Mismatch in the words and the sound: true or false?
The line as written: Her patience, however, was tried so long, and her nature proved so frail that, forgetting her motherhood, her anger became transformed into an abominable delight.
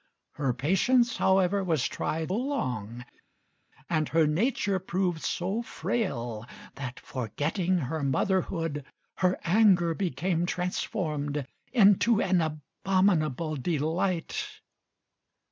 true